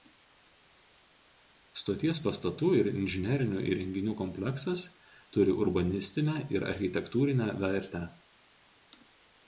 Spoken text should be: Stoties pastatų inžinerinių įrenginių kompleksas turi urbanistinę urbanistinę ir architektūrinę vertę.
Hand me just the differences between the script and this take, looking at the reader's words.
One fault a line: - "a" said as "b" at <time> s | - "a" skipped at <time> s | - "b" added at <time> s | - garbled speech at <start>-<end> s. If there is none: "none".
- "ir" added at 2.8 s
- "urbanistinę" skipped at 6.4 s